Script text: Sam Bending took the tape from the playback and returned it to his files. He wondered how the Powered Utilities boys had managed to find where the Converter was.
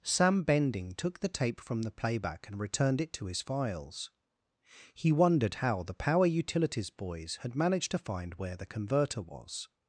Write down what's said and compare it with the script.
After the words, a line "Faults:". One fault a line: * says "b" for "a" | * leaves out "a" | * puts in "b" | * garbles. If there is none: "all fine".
Sam Bending took the tape from the playback and returned it to his files. He wondered how the Power Utilities boys had managed to find where the Converter was.
Faults:
* says "Power" for "Powered"